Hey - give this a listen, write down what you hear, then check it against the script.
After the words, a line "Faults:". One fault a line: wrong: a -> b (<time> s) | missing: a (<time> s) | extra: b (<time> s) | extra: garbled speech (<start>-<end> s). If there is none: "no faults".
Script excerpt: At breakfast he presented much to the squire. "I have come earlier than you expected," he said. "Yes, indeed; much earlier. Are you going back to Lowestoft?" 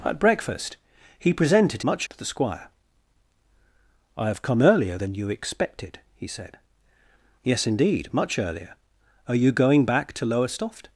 At breakfast he presented much to the squire. "I have come earlier than you expected," he said. "Yes, indeed; much earlier. Are you going back to Lowestoft?"
Faults:
no faults